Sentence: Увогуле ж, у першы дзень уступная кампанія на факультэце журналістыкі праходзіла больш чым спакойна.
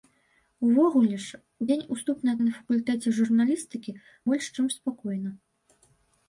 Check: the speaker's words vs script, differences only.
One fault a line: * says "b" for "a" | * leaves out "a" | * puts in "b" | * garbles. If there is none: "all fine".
* leaves out "першы"
* leaves out "кампанія"
* leaves out "праходзіла"